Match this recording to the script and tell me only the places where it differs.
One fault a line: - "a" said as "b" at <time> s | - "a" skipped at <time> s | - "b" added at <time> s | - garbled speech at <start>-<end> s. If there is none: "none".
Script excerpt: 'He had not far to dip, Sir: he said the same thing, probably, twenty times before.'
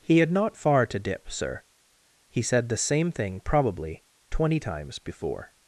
none